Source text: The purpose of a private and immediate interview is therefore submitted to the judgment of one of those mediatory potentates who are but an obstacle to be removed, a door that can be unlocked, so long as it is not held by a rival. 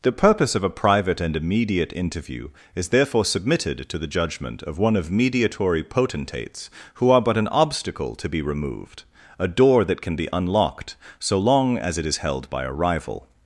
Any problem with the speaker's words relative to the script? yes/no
yes